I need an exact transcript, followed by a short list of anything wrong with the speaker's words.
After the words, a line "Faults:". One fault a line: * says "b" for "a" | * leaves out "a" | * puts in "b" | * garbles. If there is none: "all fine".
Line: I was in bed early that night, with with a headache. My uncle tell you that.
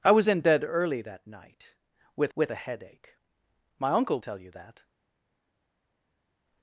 I was in bed early that night, with with a headache. My uncle tell you that.
Faults:
all fine